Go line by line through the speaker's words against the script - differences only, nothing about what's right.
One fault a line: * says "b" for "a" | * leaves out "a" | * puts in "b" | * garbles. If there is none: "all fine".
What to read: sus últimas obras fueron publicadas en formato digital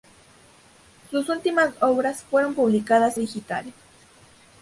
* leaves out "en formato"